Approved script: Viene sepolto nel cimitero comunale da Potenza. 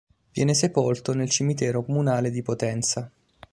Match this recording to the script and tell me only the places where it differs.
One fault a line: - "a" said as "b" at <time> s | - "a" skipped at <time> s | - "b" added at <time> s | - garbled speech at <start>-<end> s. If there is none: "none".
- "da" said as "di" at 2.3 s